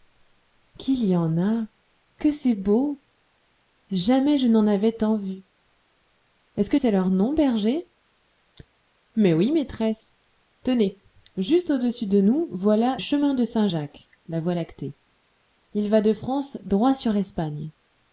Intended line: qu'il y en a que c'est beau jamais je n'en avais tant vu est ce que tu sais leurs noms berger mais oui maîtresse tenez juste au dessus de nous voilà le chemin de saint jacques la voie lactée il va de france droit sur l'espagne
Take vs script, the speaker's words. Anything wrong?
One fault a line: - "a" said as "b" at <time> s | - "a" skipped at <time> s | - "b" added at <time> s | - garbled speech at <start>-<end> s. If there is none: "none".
- "tu" skipped at 6.8 s
- "le" skipped at 13.0 s